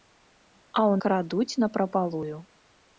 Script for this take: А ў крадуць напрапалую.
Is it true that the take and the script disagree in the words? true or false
false